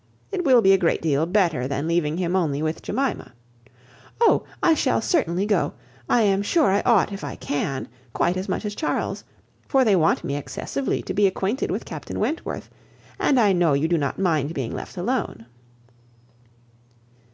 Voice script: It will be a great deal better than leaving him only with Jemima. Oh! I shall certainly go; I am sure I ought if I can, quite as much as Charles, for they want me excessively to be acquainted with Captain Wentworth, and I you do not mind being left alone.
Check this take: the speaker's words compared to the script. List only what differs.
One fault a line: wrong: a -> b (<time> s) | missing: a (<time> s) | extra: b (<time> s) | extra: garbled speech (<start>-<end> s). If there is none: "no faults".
extra: know (13.5 s)